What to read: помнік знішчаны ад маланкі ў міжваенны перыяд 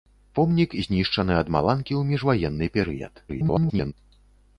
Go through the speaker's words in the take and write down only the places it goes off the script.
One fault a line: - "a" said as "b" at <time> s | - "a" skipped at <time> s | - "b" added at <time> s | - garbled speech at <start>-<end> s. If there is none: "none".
- garbled speech at 3.3-3.9 s